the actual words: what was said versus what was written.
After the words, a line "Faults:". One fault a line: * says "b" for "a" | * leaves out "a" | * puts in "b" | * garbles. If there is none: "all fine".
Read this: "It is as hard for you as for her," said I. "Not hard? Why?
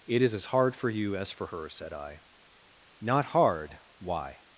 "It is as hard for you as for her," said I. "Not hard? Why?
Faults:
all fine